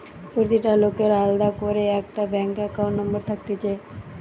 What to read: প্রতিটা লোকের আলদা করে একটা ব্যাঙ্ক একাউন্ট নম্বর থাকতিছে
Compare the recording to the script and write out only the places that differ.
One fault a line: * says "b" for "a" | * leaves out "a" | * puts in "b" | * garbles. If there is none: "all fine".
all fine